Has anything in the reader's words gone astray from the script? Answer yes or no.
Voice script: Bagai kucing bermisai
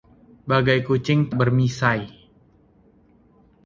no